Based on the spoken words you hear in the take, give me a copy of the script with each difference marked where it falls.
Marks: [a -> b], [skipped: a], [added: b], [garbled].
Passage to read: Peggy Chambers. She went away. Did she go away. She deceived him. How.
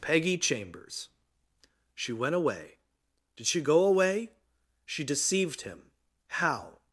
Peggy Chambers. She went away. Did she go away. She deceived him. How.